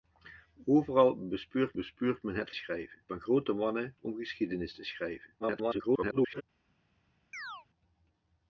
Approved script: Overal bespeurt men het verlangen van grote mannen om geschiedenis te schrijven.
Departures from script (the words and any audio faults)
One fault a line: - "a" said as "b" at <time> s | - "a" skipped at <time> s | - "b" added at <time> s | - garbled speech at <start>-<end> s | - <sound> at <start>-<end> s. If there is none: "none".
- "bespeurt" added at 1.7 s
- "verlangen" said as "schrijven" at 2.5 s
- garbled speech at 5.4-6.4 s
- chirp at 7.3-7.7 s